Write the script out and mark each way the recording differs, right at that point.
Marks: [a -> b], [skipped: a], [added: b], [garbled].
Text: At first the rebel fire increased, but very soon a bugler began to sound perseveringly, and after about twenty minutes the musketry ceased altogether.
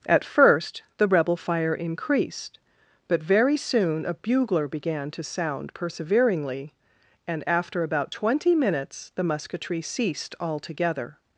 At first the rebel fire increased, but very soon a bugler began to sound perseveringly, and after about twenty minutes the musketry ceased altogether.